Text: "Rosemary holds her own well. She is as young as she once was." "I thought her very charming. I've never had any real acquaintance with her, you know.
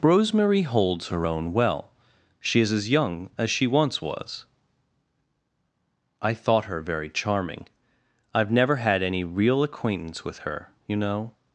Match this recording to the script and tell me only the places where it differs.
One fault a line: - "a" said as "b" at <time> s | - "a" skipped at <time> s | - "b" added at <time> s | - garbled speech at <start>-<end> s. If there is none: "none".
none